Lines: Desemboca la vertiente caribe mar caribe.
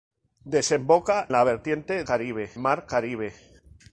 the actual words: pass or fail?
pass